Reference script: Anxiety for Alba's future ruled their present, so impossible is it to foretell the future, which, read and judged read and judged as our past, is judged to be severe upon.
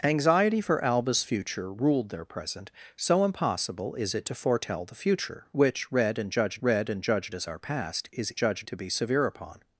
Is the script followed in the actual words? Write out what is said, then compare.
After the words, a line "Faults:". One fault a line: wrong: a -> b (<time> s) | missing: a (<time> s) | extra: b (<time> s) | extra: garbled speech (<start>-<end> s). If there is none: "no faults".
Anxiety for Alba's future ruled their present, so impossible is it to foretell the future, which, read and judged read and judged as our past, is judged to be severe upon.
Faults:
no faults